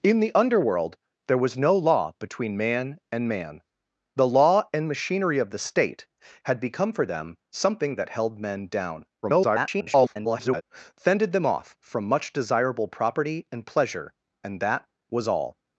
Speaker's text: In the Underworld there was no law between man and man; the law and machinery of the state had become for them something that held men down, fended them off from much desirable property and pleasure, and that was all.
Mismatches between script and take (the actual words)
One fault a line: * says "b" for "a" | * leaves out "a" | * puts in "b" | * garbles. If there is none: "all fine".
* garbles